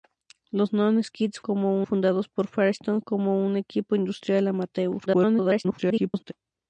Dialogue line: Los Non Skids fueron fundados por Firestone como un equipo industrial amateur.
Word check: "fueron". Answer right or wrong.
wrong